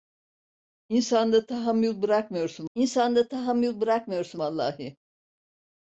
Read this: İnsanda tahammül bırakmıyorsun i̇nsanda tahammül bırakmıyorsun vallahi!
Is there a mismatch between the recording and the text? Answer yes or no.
no